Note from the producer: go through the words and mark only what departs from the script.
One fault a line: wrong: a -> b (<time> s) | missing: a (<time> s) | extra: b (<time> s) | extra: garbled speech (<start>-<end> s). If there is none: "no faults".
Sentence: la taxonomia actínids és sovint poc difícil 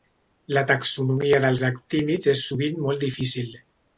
extra: dels (1.4 s)
wrong: poc -> molt (2.9 s)